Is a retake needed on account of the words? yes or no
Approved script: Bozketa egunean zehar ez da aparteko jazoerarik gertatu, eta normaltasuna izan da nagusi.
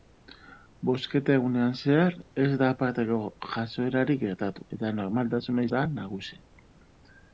yes